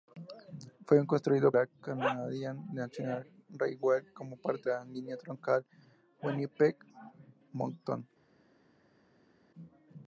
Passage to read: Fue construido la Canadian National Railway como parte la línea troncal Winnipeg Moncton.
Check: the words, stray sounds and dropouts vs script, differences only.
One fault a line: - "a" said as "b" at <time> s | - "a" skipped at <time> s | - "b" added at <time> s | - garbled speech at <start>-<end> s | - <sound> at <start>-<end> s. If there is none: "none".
none